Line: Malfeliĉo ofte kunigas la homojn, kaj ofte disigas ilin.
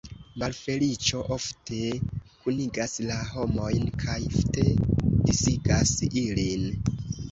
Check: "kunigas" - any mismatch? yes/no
no